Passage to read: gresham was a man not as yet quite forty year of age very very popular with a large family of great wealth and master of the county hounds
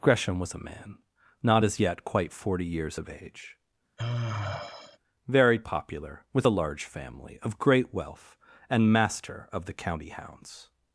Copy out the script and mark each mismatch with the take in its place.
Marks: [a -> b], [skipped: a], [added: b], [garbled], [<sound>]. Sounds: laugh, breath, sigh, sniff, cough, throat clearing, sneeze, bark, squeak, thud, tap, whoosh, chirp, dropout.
gresham was a man not as yet quite forty [year -> years] of age [sigh] very [skipped: very] popular with a large family of great wealth and master of the county hounds